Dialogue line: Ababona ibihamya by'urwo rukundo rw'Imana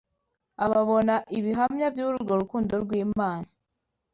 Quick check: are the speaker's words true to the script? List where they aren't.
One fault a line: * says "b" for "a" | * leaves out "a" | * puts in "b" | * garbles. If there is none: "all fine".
all fine